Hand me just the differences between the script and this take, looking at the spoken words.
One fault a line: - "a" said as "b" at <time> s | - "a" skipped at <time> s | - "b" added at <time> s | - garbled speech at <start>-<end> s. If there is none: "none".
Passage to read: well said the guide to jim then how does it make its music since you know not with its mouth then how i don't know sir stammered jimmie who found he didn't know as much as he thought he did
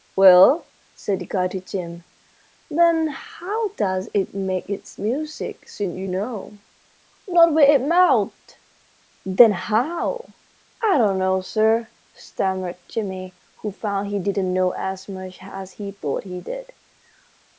none